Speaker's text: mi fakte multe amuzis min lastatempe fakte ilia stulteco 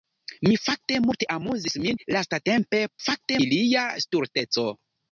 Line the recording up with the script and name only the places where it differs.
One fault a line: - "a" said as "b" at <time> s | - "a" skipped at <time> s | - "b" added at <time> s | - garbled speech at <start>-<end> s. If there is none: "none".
none